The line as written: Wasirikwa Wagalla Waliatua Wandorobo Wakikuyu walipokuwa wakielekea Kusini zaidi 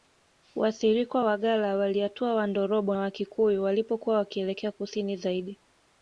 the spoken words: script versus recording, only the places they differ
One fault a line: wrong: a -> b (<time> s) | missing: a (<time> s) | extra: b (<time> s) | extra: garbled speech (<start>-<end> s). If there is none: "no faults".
no faults